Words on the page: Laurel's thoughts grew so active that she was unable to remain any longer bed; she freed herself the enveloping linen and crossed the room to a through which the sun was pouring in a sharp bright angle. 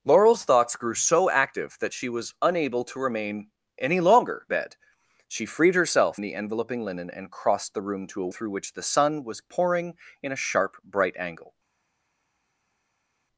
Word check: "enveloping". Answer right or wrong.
right